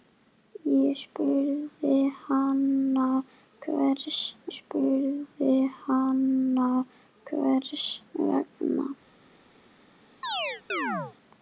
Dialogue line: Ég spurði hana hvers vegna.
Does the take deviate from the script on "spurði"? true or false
false